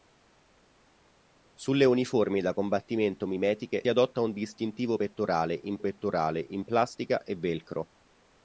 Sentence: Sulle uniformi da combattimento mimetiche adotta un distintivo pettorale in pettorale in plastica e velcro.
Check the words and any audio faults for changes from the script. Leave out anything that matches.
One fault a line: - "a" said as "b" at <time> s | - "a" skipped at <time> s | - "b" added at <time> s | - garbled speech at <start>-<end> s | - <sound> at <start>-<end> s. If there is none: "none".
none